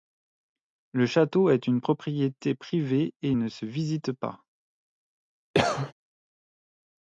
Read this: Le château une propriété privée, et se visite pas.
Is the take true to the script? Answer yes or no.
no